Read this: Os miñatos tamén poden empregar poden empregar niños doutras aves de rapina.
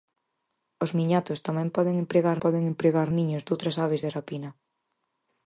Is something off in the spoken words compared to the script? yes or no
no